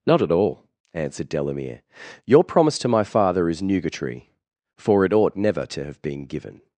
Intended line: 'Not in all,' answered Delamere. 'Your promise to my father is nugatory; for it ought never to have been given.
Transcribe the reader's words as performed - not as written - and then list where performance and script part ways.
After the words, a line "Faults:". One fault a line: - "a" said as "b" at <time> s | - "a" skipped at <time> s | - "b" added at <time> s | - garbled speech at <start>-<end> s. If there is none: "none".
'Not at all,' answered Delamere. 'Your promise to my father is nugatory; for it ought never to have been given.
Faults:
- "in" said as "at" at 0.2 s